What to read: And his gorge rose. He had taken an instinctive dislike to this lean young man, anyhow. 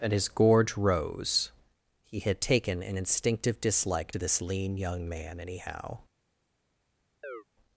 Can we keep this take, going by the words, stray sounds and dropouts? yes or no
no